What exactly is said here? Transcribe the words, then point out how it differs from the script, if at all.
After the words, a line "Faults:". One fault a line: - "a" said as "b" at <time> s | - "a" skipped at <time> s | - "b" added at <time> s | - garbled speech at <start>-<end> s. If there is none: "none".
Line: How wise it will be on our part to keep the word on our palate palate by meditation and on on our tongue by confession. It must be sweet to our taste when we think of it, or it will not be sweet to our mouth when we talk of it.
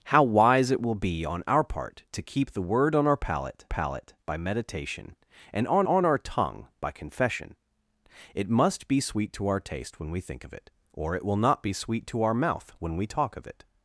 How wise it will be on our part to keep the word on our palate palate by meditation and on on our tongue by confession. It must be sweet to our taste when we think of it, or it will not be sweet to our mouth when we talk of it.
Faults:
none